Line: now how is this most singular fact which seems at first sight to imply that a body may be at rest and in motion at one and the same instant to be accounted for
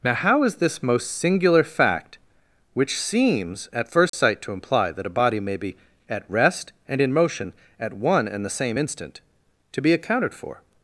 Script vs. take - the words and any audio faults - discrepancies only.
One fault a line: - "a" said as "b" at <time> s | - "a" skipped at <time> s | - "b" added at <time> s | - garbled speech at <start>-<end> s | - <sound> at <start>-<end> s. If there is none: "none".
- dropout at 4.1-4.1 s